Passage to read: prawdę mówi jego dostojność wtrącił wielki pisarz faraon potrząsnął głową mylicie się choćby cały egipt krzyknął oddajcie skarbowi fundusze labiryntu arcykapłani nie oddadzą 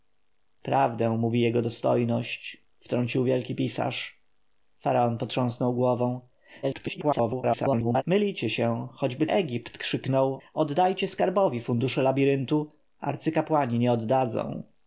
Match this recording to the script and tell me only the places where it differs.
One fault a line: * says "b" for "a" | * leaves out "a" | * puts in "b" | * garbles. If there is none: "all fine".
* garbles
* leaves out "cały"